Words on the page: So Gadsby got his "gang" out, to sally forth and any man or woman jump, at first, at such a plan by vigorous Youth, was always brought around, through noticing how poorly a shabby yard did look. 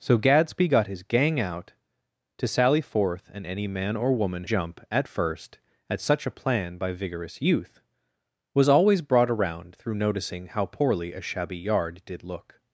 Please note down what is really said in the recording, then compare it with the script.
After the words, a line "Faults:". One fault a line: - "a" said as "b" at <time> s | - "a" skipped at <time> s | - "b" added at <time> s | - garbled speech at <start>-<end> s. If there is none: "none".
So Gadsby got his "gang" out, to sally forth and any man or woman jump, at first, at such a plan by vigorous Youth, was always brought around, through noticing how poorly a shabby yard did look.
Faults:
none